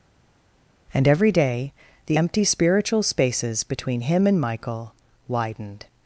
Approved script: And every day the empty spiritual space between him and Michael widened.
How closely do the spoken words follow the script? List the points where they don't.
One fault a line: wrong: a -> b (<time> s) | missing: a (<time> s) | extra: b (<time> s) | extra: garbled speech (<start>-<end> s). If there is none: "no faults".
wrong: space -> spaces (3.0 s)